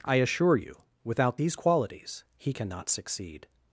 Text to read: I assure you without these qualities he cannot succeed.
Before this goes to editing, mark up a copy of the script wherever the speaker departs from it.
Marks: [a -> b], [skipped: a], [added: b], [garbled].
I assure you without these qualities he cannot succeed.